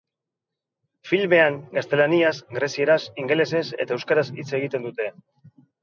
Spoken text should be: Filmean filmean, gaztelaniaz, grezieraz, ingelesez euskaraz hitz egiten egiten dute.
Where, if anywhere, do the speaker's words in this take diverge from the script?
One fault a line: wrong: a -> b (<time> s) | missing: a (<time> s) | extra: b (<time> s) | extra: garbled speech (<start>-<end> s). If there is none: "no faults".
missing: filmean (1.6 s)
extra: eta (3.9 s)
missing: egiten (4.9 s)